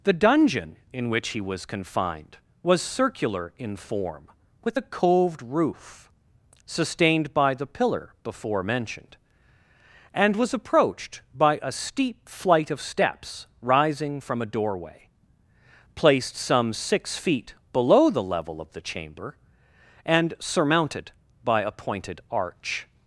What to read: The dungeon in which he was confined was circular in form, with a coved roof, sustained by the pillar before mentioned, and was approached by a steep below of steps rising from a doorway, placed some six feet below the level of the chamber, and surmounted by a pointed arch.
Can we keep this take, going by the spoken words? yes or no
no